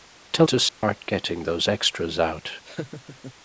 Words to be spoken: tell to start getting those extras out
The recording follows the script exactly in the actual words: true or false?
true